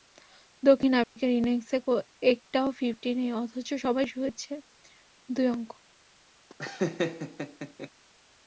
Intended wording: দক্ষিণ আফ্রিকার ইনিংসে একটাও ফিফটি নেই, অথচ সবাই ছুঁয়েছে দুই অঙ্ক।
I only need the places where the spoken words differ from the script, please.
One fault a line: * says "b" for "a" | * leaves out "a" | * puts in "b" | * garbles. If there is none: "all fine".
all fine